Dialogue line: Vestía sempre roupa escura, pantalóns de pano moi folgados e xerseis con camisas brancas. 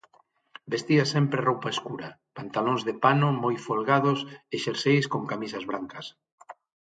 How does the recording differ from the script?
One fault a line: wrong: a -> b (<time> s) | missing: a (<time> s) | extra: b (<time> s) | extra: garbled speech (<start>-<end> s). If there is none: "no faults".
no faults